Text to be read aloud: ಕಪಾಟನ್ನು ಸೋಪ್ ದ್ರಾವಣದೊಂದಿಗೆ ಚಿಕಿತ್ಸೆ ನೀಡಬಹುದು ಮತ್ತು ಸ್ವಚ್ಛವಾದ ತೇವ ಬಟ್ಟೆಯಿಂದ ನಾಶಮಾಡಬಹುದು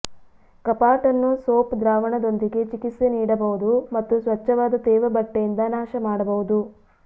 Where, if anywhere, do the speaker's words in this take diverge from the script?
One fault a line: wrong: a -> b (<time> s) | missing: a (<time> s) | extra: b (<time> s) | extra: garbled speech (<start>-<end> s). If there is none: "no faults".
no faults